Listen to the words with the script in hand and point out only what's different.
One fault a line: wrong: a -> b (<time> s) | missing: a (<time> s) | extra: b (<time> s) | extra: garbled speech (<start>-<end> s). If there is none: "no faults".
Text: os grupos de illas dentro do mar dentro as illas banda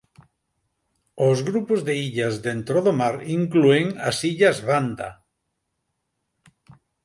wrong: dentro -> inclúen (3.4 s)